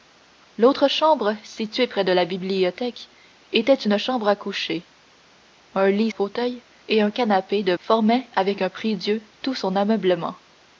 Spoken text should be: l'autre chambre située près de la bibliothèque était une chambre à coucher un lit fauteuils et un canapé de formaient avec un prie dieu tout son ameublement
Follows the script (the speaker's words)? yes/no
yes